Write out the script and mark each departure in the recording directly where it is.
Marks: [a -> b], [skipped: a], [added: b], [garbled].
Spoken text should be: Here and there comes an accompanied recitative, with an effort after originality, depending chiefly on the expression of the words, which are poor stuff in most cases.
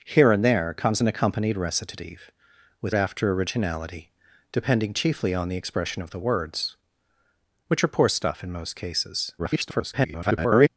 Here and there comes an accompanied recitative, with [skipped: an effort] after originality, depending chiefly on the expression of the words, which are poor stuff in most cases. [garbled]